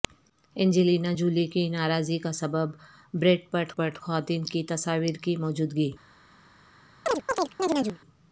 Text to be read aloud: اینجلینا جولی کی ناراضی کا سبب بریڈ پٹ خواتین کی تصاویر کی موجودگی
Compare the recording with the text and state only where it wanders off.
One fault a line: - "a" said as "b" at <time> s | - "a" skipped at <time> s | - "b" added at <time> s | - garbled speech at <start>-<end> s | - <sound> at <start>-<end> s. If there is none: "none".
- "پٹ" added at 3.7 s
- chirp at 7.1-8.0 s